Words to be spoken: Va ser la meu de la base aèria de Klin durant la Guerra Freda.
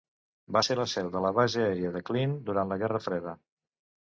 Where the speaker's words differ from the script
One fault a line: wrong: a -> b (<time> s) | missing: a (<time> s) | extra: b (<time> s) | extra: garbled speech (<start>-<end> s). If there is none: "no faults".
wrong: meu -> seu (0.9 s)